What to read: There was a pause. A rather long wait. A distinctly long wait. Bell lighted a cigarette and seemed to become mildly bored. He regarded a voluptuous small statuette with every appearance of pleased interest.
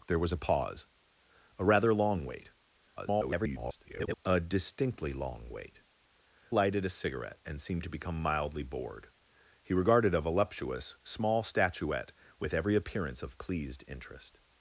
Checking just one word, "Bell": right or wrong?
wrong